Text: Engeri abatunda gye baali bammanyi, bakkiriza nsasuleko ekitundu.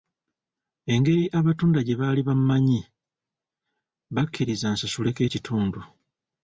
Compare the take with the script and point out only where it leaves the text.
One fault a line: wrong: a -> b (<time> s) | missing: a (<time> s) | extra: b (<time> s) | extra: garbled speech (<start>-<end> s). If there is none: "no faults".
no faults